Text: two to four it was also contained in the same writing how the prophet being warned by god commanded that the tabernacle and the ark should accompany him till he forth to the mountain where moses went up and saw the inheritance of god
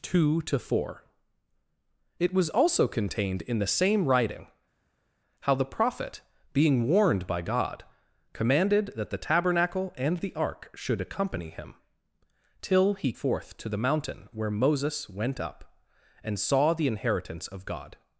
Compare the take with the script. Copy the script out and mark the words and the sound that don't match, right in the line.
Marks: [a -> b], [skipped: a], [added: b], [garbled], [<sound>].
two to four it was also contained in the same writing how the prophet being warned by god commanded that the tabernacle and the ark should accompany him till he forth to the mountain where moses went up and saw the inheritance of god